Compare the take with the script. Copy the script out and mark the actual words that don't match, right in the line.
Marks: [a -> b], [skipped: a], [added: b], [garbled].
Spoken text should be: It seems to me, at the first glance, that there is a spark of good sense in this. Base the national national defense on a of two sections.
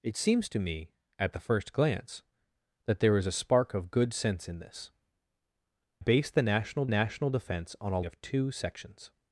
It seems to me, at the first glance, that there is a spark of good sense in this. Base the national national defense on a of two sections.